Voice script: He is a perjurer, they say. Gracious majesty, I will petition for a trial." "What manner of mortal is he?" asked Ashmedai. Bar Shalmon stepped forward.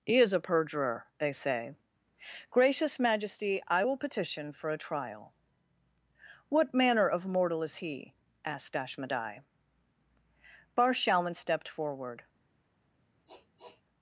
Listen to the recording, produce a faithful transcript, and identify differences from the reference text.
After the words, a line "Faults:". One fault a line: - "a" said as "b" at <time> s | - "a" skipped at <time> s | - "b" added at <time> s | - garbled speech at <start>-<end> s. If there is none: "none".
He is a perjurer, they say. Gracious majesty, I will petition for a trial." "What manner of mortal is he?" asked Ashmedai. Bar Shalmon stepped forward.
Faults:
none